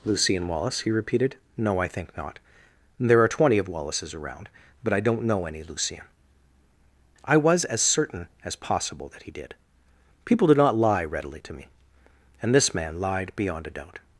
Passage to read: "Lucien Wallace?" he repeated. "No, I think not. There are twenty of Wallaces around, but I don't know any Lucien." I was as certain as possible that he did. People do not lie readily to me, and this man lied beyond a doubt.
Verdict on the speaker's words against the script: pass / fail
pass